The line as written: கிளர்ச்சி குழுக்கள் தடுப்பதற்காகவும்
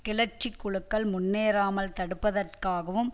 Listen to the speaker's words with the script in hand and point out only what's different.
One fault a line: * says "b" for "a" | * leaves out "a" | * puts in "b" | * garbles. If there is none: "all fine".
* puts in "முன்னேறாமல்"